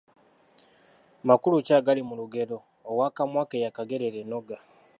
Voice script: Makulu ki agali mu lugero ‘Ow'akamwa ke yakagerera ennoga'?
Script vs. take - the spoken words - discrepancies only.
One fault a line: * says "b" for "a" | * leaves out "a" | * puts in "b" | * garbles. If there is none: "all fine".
all fine